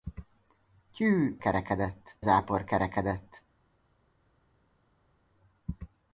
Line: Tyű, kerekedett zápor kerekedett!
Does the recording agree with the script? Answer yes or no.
yes